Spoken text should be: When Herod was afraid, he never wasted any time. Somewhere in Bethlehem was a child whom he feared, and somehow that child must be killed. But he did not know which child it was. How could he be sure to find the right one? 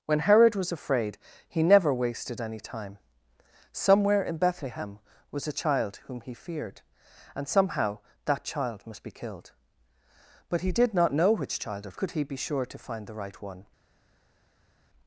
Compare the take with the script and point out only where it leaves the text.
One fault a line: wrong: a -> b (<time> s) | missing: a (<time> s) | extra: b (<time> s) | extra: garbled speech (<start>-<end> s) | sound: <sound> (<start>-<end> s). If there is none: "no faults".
missing: was How (12.0 s)